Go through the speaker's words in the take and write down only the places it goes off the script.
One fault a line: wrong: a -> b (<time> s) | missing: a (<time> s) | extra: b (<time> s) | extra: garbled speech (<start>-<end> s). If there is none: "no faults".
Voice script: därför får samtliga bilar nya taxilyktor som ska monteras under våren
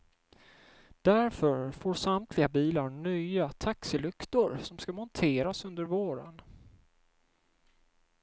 no faults